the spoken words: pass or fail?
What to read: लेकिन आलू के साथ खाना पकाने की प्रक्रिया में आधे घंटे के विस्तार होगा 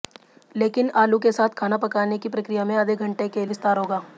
pass